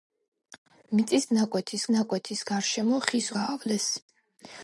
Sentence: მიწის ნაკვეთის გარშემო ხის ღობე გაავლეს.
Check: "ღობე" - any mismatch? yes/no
yes